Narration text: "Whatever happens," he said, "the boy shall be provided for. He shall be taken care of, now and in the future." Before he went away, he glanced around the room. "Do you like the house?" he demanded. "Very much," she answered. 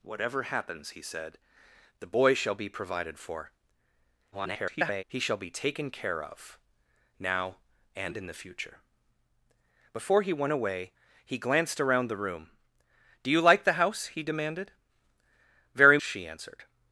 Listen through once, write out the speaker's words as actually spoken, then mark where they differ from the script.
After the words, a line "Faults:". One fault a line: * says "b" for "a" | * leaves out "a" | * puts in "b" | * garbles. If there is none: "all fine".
"Whatever happens," he said, "the boy shall be provided for. [garbled] He shall be taken care of, now and in the future." Before he went away, he glanced around the room. "Do you like the house?" he demanded. "Very," she answered.
Faults:
* garbles
* leaves out "much"